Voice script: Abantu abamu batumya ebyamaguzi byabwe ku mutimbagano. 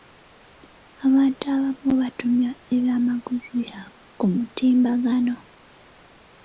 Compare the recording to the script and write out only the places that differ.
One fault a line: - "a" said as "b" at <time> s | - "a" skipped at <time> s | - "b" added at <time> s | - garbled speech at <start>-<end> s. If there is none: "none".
none